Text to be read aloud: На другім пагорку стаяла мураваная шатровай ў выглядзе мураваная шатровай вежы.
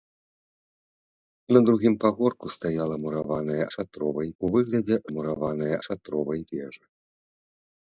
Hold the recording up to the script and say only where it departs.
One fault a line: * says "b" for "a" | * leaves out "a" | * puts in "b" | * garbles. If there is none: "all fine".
all fine